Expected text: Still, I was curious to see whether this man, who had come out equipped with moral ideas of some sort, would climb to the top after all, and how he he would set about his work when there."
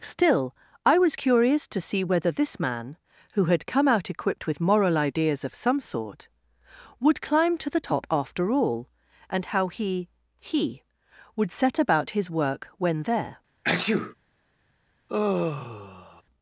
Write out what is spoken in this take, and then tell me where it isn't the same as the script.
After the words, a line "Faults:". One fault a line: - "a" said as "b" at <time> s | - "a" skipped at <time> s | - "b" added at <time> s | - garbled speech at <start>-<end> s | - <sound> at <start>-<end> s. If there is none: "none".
Still, I was curious to see whether this man, who had come out equipped with moral ideas of some sort, would climb to the top after all, and how he he would set about his work when there."
Faults:
- sneeze at 13.6-14.1 s
- sigh at 15.1-16.2 s